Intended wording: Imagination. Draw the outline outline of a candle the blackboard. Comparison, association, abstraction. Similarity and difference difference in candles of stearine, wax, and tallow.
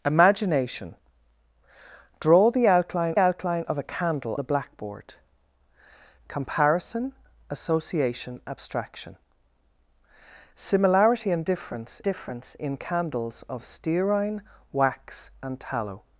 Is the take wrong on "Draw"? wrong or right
right